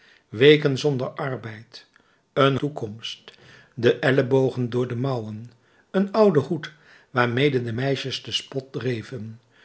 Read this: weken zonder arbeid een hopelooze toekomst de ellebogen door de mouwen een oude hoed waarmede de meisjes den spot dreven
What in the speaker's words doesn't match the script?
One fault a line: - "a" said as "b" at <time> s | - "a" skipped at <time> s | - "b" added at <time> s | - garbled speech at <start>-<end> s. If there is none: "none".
- "hopelooze" skipped at 2.6 s